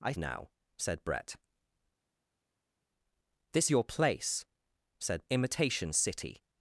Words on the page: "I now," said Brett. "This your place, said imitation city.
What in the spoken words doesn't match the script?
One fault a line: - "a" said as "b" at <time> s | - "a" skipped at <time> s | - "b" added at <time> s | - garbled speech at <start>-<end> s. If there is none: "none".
none